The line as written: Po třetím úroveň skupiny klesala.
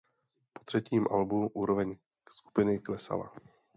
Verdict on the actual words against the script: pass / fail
fail